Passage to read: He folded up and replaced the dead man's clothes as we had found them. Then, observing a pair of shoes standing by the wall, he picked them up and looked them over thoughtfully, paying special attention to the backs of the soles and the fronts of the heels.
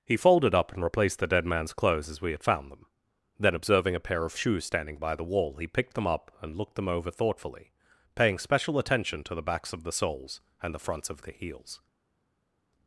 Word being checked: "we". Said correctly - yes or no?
yes